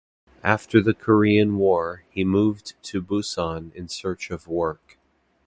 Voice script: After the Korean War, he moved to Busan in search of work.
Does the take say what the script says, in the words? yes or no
yes